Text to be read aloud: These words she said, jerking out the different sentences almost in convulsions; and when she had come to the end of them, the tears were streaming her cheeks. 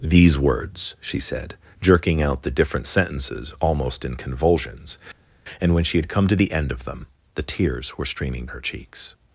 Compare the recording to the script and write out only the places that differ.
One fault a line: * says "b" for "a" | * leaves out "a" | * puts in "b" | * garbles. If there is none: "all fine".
all fine